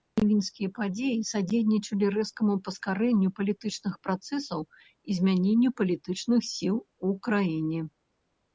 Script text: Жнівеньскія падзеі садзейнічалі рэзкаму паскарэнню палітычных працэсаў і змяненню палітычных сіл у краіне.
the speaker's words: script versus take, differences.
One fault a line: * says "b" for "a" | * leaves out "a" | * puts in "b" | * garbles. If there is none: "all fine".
all fine